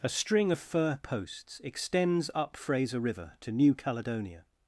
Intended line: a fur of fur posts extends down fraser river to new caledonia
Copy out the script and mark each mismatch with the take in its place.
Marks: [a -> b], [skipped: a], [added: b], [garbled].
a [fur -> string] of fur posts extends [down -> up] fraser river to new caledonia